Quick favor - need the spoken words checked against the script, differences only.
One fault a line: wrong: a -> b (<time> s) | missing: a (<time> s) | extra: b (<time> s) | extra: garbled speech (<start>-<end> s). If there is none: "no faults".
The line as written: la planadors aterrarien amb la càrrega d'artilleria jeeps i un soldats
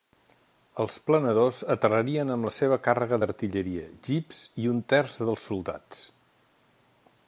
wrong: la -> els (0.8 s)
extra: seva (2.6 s)
extra: terç dels (4.9 s)